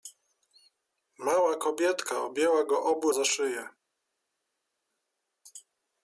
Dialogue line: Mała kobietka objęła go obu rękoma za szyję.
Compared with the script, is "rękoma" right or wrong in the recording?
wrong